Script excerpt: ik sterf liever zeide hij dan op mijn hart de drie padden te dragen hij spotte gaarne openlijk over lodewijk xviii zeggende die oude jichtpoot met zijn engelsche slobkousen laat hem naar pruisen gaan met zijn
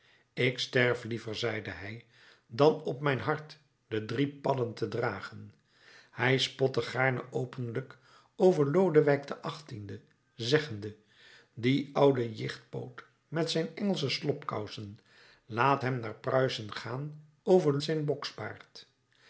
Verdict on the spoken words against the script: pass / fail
fail